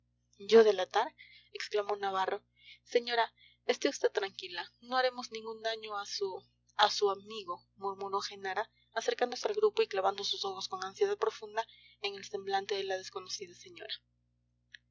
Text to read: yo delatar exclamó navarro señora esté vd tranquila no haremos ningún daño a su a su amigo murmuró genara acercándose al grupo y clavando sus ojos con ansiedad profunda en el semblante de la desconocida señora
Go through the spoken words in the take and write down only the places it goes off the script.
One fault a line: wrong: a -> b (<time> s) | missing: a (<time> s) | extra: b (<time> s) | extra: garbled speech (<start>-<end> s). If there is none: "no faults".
no faults